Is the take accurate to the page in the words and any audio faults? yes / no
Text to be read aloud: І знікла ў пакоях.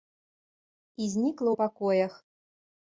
yes